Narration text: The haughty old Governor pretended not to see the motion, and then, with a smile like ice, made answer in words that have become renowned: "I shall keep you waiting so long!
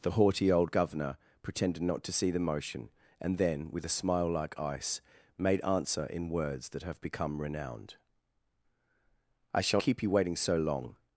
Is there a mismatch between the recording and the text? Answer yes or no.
no